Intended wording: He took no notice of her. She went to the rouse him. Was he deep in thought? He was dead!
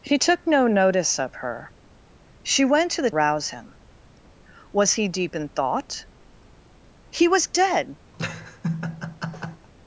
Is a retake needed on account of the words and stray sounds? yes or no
yes